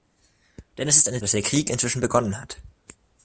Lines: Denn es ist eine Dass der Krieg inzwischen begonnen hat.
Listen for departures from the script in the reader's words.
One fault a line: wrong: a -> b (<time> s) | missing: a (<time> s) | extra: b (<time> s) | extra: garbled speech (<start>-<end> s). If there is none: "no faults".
no faults